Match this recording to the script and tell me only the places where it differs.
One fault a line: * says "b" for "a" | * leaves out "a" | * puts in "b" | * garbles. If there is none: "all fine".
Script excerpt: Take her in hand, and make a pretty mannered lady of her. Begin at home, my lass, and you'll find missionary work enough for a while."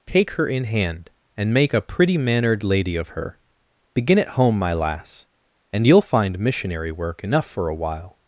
all fine